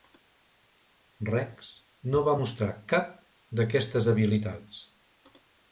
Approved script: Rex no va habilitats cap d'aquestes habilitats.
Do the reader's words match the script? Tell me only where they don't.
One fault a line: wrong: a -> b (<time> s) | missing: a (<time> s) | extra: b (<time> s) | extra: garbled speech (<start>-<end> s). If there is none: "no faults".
wrong: habilitats -> mostrar (2.4 s)